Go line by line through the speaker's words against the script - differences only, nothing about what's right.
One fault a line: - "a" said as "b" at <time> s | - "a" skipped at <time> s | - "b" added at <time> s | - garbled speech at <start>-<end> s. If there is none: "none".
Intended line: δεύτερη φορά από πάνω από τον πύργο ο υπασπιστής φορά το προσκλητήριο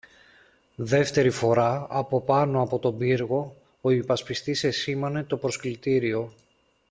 - "φορά" said as "εσήμανε" at 4.6 s